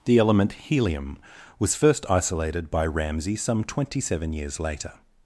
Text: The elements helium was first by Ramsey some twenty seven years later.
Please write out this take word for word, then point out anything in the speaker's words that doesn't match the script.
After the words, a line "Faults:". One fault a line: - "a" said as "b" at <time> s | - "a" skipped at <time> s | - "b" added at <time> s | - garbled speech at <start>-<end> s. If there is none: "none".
The element helium was first isolated by Ramsey some twenty seven years later.
Faults:
- "elements" said as "element" at 0.2 s
- "isolated" added at 2.1 s